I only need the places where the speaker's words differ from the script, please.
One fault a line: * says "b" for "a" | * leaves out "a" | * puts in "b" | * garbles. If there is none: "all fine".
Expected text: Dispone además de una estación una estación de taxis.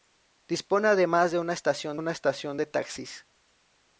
all fine